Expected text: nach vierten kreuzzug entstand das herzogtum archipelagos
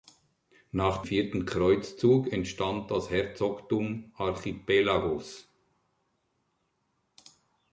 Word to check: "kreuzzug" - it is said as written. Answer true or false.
true